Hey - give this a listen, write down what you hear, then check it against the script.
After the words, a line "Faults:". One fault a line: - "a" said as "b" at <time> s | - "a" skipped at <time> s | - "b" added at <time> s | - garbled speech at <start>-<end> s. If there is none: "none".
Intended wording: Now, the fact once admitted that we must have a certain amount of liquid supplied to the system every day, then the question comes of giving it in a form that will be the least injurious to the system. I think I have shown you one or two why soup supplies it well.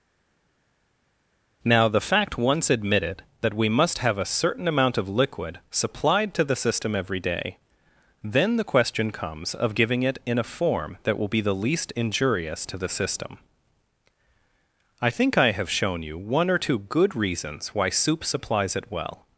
Now, the fact once admitted that we must have a certain amount of liquid supplied to the system every day, then the question comes of giving it in a form that will be the least injurious to the system. I think I have shown you one or two good reasons why soup supplies it well.
Faults:
- "good reasons" added at 16.8 s